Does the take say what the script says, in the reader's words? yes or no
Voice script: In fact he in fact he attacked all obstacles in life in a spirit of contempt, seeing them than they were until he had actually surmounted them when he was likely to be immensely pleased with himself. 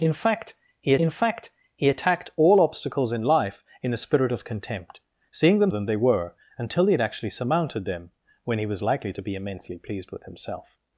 yes